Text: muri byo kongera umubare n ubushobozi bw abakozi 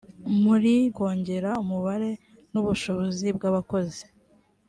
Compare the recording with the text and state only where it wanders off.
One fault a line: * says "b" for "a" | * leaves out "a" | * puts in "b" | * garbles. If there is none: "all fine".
* leaves out "byo"